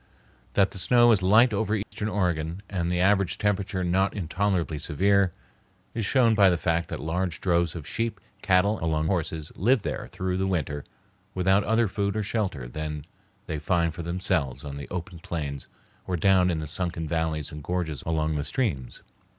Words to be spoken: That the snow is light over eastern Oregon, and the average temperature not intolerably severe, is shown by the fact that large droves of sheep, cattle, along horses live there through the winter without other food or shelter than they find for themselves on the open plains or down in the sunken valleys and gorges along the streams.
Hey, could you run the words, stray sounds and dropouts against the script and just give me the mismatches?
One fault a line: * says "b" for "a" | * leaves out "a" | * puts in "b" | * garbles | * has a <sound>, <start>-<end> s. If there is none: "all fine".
* has a dropout, 1.8-1.9 s